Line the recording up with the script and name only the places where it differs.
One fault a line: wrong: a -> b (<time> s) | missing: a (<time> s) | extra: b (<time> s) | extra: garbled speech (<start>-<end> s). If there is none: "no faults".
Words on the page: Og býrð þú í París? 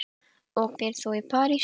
no faults